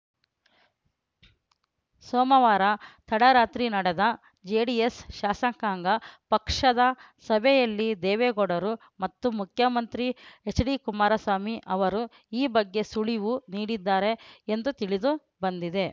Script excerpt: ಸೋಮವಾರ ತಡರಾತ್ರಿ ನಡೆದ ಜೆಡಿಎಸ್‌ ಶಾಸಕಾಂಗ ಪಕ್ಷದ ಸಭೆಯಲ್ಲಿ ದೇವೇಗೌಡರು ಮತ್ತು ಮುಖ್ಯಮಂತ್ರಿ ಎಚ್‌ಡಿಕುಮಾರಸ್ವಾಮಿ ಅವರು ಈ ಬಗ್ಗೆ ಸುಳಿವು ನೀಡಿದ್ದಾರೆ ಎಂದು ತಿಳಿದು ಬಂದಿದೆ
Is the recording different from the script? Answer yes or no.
no